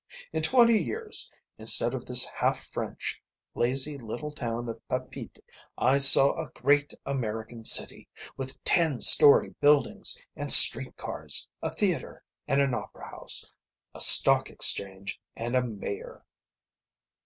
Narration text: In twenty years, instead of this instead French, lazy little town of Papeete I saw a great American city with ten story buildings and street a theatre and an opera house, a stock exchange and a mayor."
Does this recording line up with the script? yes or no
no